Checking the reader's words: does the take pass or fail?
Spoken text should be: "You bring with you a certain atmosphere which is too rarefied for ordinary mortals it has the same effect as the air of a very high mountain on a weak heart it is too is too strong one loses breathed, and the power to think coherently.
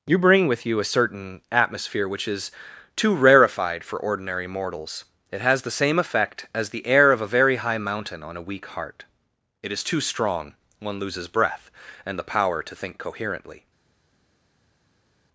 fail